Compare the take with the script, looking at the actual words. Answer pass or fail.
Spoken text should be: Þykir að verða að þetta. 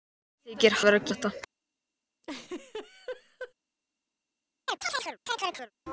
pass